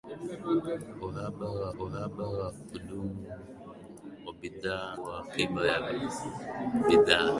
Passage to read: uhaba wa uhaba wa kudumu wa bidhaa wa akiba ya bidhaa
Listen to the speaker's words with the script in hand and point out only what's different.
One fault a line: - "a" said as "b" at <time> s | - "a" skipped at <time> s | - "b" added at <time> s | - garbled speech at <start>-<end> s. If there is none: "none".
none